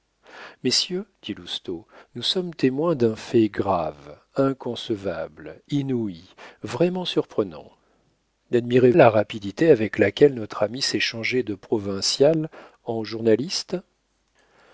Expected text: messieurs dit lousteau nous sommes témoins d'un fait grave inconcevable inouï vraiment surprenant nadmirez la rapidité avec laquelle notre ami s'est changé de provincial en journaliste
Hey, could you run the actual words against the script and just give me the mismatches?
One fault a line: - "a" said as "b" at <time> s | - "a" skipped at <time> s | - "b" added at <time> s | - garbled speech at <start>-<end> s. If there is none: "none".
none